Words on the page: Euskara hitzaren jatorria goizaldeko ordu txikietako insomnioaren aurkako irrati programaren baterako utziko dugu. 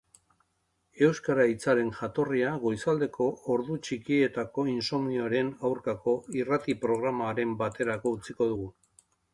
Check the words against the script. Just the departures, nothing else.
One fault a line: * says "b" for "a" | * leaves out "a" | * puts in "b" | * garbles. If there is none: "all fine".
all fine